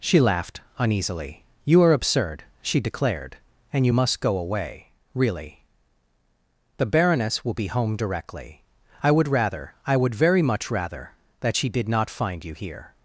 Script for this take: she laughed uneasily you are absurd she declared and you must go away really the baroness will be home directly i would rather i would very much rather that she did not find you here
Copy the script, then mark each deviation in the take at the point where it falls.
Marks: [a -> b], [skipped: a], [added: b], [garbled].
she laughed uneasily you are absurd she declared and you must go away really the baroness will be home directly i would rather i would very much rather that she did not find you here